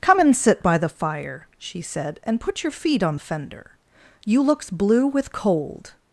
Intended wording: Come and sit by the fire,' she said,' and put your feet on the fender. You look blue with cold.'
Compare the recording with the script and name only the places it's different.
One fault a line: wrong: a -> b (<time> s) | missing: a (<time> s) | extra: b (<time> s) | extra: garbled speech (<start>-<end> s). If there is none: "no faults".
wrong: look -> looks (4.4 s)